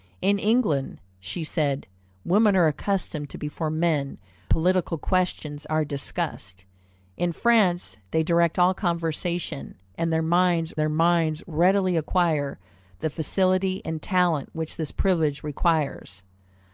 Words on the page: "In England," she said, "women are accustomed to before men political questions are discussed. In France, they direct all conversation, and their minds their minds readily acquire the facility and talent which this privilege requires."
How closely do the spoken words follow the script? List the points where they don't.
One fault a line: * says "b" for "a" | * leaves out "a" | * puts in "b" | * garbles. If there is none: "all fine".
all fine